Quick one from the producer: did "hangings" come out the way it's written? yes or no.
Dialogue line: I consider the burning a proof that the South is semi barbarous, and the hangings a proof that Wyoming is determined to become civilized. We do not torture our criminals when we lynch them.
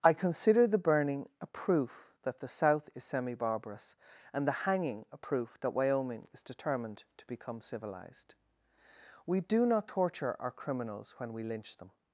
no